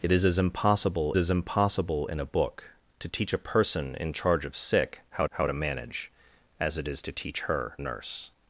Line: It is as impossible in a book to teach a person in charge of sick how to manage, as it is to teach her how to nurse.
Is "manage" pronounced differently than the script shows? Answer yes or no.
no